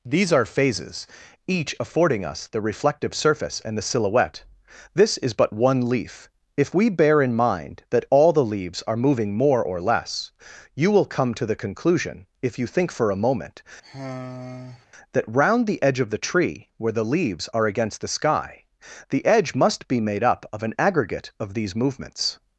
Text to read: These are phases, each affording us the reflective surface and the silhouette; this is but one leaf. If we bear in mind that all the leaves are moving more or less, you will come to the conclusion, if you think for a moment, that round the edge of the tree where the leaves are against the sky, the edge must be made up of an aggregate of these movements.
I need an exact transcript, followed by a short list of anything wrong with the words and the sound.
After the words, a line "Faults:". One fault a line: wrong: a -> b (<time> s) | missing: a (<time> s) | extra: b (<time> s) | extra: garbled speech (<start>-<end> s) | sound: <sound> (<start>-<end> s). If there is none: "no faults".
These are phases, each affording us the reflective surface and the silhouette; this is but one leaf. If we bear in mind that all the leaves are moving more or less, you will come to the conclusion, if you think for a moment, that round the edge of the tree where the leaves are against the sky, the edge must be made up of an aggregate of these movements.
Faults:
sound: sigh (13.8-14.9 s)